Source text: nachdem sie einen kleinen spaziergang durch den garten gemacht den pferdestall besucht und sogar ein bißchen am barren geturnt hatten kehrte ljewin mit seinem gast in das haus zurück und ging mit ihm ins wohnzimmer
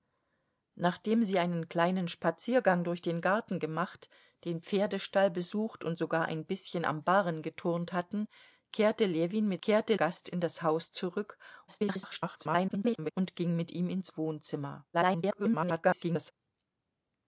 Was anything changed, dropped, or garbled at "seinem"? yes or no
yes